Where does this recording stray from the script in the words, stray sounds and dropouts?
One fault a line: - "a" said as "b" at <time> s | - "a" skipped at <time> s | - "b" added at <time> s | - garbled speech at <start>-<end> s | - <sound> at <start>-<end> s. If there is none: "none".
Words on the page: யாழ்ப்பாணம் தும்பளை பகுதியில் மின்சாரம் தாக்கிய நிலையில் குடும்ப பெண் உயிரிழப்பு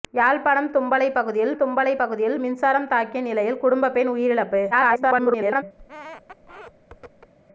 - "தும்பளை பகுதியில்" added at 1.6 s
- garbled speech at 4.7-5.6 s
- squeak at 5.8-7.3 s